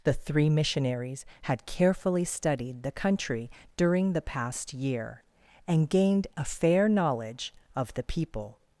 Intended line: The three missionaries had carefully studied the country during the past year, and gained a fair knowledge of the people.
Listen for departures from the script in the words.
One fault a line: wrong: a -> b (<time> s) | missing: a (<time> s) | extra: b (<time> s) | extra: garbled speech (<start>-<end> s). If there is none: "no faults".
no faults